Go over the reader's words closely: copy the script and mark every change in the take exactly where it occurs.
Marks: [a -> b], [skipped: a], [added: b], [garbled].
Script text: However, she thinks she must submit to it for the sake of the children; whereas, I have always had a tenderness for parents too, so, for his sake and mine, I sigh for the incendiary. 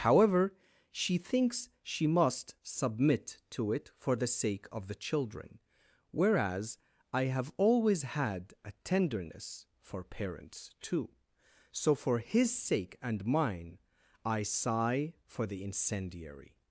However, she thinks she must submit to it for the sake of the children; whereas, I have always had a tenderness for parents too, so, for his sake and mine, I sigh for the incendiary.